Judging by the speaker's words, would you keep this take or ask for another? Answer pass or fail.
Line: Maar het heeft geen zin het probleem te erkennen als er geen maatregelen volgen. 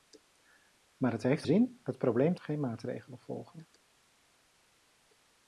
fail